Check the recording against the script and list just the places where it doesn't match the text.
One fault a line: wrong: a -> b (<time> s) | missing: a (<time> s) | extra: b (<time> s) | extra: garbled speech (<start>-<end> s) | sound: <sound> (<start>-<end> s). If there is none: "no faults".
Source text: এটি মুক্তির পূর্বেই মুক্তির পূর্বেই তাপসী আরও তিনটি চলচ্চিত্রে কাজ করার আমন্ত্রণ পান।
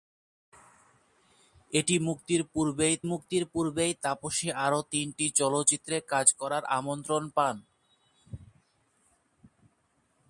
no faults